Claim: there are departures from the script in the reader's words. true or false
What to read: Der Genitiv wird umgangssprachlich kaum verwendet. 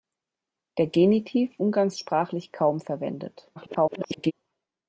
true